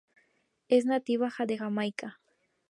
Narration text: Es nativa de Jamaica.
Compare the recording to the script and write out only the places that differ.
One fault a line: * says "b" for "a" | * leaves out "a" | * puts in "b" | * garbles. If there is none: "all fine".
all fine